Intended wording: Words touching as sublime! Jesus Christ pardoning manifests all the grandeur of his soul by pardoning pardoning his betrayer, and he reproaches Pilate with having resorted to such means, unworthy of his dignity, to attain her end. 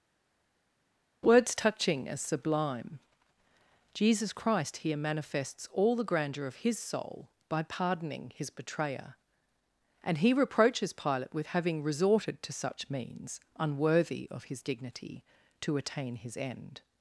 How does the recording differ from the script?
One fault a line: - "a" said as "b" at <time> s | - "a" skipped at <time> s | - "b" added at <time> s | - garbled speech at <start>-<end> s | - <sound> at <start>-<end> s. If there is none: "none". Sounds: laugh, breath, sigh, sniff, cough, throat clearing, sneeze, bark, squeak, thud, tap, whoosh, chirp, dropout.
- "pardoning" said as "here" at 4.8 s
- "pardoning" skipped at 8.3 s
- "her" said as "his" at 16.2 s